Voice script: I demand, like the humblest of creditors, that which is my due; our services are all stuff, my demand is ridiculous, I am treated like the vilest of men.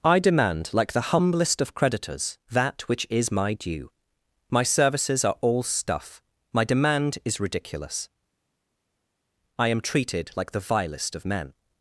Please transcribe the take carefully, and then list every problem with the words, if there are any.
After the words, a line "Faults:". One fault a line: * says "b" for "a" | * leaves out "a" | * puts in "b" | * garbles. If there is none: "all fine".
I demand, like the humblest of creditors, that which is my due; my services are all stuff, my demand is ridiculous, I am treated like the vilest of men.
Faults:
* says "my" for "our"